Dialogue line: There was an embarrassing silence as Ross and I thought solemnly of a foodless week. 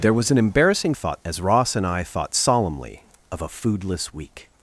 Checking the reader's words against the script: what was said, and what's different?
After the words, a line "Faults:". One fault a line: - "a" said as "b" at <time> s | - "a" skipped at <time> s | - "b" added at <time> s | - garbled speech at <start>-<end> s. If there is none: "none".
There was an embarrassing thought as Ross and I thought solemnly of a foodless week.
Faults:
- "silence" said as "thought" at 0.9 s